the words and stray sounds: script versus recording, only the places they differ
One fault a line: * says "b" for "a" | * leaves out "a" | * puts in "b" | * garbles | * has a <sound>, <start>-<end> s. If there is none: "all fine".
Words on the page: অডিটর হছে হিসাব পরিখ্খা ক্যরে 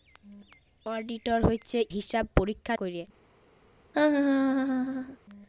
* has a laugh, 3.9-5.2 s